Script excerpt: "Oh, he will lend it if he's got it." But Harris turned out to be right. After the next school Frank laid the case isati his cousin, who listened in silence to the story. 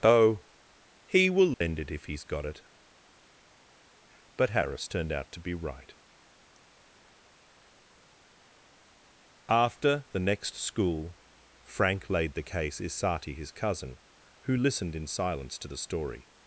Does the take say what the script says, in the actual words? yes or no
yes